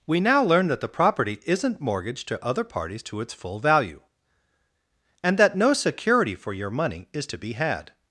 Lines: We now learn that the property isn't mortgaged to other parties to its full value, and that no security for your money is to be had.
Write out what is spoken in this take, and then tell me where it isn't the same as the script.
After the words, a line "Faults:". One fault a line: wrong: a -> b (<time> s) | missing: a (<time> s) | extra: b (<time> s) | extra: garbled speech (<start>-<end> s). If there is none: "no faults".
We now learn that the property isn't mortgaged to other parties to its full value, and that no security for your money is to be had.
Faults:
no faults